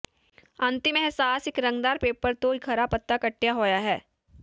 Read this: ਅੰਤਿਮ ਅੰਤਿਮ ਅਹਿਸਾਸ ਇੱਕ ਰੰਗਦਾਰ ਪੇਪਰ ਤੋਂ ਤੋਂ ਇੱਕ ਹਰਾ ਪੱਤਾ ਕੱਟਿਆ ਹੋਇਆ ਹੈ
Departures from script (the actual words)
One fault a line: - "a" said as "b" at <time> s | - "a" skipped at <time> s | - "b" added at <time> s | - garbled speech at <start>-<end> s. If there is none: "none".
- "ਅੰਤਿਮ" skipped at 1.0 s
- "ਤੋਂ" skipped at 2.5 s